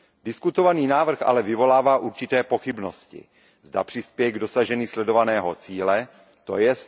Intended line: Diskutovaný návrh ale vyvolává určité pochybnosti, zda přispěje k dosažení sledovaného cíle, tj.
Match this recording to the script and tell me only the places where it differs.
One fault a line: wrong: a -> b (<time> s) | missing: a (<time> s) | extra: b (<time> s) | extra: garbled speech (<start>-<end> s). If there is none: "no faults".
no faults